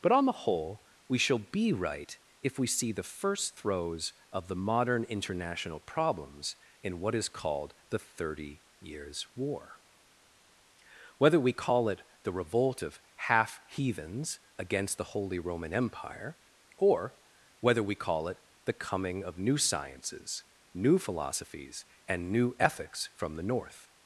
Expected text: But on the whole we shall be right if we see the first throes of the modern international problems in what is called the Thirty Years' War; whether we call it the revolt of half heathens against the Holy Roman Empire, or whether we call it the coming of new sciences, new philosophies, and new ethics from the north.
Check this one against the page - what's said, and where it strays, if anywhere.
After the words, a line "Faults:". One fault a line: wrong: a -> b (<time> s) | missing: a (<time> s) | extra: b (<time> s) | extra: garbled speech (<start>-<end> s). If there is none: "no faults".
But on the whole we shall be right if we see the first throes of the modern international problems in what is called the Thirty Years' War; whether we call it the revolt of half heathens against the Holy Roman Empire, or whether we call it the coming of new sciences, new philosophies, and new ethics from the north.
Faults:
no faults